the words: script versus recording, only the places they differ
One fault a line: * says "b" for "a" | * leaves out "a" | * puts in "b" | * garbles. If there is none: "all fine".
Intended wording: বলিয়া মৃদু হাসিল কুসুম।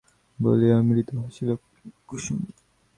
all fine